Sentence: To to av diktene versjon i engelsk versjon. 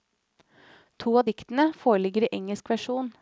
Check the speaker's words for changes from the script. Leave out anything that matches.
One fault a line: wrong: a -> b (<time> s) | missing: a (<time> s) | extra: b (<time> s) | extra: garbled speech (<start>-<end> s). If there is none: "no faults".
missing: to (1.2 s)
wrong: versjon -> foreligger (1.7 s)